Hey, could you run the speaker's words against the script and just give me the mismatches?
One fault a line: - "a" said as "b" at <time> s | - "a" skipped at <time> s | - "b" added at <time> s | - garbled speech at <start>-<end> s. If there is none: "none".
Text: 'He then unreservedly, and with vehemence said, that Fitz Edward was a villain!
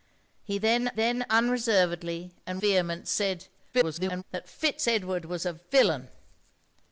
- "then" added at 0.9 s
- "with" skipped at 2.6 s
- garbled speech at 3.7-4.2 s